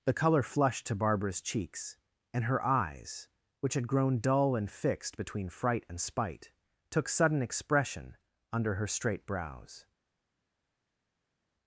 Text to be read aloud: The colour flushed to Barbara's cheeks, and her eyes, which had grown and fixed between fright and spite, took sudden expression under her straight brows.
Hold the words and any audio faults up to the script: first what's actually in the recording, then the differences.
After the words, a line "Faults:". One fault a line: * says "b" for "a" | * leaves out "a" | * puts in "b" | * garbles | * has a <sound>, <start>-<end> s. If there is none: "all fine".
The colour flushed to Barbara's cheeks, and her eyes, which had grown dull and fixed between fright and spite, took sudden expression under her straight brows.
Faults:
* puts in "dull"